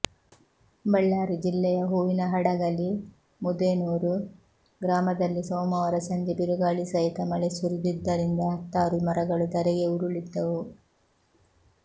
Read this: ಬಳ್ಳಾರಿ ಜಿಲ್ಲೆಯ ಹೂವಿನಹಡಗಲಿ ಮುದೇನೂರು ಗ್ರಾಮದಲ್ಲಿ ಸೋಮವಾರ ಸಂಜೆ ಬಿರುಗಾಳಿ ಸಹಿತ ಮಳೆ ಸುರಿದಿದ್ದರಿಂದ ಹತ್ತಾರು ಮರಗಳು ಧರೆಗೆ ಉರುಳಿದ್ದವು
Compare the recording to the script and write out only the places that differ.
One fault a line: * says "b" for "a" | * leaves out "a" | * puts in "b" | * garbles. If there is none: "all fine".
all fine